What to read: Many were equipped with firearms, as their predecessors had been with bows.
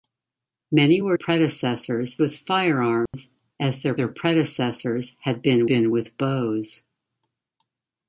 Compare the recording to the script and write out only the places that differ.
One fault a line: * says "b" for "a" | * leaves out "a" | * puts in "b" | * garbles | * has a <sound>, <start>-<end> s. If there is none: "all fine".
* says "predecessors" for "equipped"
* has a dropout, 3.1-3.1 s
* puts in "their"
* puts in "been"